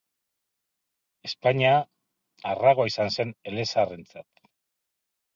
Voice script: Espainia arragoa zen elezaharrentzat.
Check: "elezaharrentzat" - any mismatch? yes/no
no